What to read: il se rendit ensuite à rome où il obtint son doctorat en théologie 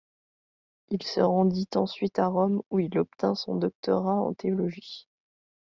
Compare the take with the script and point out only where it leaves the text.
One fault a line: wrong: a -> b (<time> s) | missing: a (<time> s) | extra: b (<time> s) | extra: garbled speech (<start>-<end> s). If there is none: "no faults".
no faults